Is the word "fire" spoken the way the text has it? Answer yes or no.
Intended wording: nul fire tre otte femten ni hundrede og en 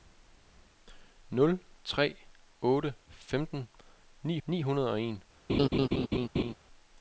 no